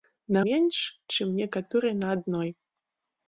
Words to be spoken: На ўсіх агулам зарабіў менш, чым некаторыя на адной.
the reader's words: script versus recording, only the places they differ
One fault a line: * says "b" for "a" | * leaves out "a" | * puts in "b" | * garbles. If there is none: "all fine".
* leaves out "ўсіх агулам зарабіў"